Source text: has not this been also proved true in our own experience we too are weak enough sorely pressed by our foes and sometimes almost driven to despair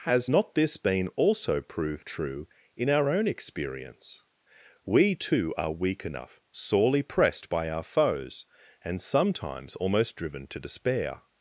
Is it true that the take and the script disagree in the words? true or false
false